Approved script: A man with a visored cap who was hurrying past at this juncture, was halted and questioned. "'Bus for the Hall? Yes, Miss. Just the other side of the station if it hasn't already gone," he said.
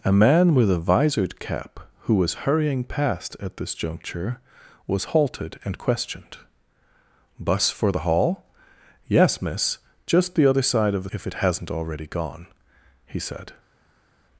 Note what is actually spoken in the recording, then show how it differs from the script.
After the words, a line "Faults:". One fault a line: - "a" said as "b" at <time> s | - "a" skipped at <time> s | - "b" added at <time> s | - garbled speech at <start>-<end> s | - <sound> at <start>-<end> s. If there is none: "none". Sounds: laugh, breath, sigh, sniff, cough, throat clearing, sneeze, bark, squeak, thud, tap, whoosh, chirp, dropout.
A man with a visored cap who was hurrying past at this juncture, was halted and questioned. "'Bus for the Hall? Yes, Miss. Just the other side of the if it hasn't already gone," he said.
Faults:
- "station" skipped at 11.1 s